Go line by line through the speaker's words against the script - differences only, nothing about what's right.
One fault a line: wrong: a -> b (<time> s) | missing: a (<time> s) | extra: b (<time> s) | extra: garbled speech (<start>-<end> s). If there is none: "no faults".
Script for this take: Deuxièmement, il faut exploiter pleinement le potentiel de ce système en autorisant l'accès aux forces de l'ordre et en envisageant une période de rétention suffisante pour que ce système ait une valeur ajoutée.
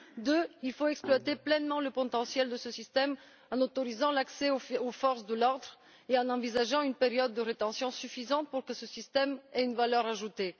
no faults